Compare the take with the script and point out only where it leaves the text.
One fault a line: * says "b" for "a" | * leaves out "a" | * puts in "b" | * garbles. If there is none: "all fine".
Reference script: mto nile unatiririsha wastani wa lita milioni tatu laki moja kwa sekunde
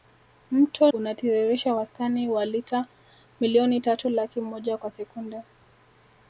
* leaves out "nile"